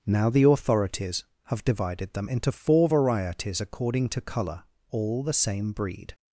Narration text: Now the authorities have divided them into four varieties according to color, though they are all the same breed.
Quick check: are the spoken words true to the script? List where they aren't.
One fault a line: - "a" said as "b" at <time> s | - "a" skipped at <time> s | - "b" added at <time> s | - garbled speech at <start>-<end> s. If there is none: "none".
- "though they are" skipped at 4.6 s